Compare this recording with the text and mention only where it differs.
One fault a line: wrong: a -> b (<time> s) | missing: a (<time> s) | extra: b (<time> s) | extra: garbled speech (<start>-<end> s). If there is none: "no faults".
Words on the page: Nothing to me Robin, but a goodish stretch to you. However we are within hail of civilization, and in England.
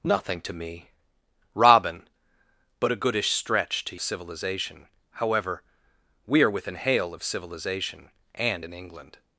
wrong: you -> civilization (4.0 s)